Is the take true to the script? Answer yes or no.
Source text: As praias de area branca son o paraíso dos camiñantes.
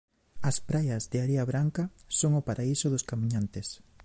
yes